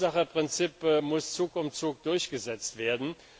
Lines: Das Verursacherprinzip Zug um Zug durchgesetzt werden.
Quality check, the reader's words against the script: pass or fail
fail